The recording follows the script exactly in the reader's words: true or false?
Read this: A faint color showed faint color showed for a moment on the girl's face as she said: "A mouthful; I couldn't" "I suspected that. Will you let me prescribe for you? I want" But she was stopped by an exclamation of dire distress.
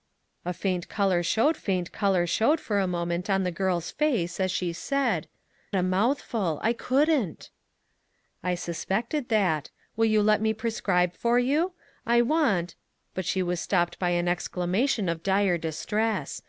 true